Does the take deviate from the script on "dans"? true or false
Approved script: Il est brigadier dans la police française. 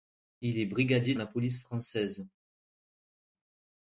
true